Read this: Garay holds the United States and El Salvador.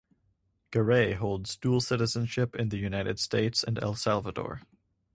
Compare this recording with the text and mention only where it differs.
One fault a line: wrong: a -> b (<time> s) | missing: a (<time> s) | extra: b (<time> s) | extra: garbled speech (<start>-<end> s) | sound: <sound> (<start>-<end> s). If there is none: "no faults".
extra: dual citizenship in (1.6 s)